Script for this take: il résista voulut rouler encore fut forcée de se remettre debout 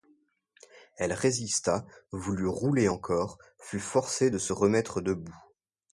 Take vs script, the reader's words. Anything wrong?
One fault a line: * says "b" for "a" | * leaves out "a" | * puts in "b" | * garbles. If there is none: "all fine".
* says "elle" for "il"